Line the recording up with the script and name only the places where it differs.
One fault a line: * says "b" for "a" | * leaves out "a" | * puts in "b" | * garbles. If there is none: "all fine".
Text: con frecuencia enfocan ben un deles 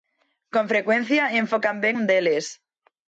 all fine